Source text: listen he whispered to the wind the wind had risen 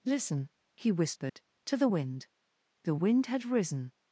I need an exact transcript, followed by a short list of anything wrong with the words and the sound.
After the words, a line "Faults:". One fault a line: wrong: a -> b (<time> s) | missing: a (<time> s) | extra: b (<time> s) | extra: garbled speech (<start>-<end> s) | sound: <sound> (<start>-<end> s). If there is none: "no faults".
listen he whispered to the wind the wind had risen
Faults:
sound: dropout (1.3-1.4 s)